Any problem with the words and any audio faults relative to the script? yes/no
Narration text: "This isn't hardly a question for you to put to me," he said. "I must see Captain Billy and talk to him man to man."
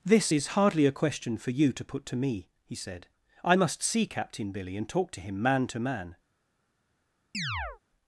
yes